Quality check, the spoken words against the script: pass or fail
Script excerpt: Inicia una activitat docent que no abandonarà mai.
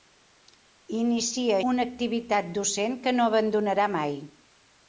pass